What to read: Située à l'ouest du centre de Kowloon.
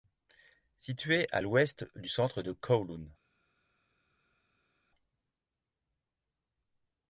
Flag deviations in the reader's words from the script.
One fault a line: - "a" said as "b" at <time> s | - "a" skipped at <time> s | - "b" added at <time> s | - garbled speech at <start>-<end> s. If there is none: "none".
none